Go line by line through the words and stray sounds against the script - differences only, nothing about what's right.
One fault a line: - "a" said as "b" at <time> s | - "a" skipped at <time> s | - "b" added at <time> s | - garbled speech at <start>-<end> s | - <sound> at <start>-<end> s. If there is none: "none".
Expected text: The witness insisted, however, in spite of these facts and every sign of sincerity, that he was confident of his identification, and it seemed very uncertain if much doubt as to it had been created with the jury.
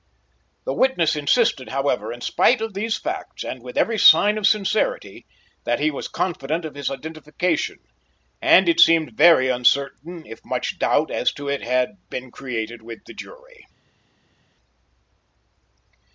- "with" added at 3.6 s